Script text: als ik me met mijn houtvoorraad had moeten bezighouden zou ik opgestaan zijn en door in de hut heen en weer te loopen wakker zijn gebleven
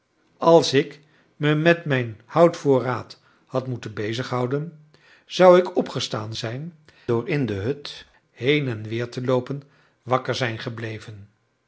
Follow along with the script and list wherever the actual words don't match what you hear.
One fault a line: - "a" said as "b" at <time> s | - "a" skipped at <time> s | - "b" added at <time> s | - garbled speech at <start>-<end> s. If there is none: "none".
- "en" skipped at 6.7 s